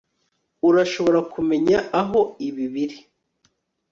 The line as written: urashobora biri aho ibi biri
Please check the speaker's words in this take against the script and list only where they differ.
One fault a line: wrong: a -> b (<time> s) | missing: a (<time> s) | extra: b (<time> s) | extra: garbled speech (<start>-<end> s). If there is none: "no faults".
wrong: biri -> kumenya (1.3 s)